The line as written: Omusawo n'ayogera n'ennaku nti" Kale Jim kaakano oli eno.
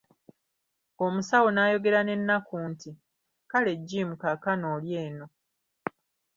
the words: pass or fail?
pass